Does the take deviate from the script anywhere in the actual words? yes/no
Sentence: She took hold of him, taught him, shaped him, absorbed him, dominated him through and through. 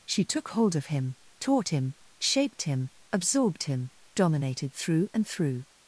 yes